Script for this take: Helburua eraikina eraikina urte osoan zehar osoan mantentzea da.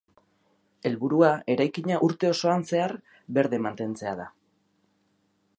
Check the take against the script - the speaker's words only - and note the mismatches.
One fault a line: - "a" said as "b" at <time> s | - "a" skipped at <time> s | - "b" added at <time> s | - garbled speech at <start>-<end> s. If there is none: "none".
- "eraikina" skipped at 2.0 s
- "osoan" said as "berde" at 3.4 s